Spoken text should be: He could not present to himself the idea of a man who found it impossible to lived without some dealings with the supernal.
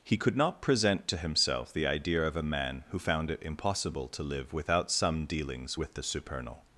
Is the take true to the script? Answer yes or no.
no